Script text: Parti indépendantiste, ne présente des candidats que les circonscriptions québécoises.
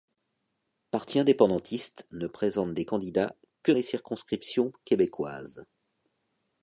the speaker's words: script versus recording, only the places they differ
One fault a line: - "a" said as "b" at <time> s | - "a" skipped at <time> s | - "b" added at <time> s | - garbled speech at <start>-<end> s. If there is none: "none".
none